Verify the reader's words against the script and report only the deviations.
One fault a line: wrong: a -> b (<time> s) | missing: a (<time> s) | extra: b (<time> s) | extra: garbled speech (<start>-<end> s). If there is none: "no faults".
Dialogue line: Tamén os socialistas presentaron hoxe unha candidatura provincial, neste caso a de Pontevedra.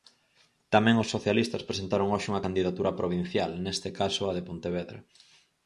no faults